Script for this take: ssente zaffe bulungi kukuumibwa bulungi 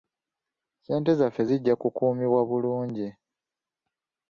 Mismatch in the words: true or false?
true